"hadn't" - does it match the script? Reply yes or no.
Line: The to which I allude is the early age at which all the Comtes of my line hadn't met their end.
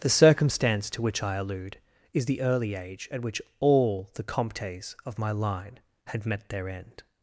no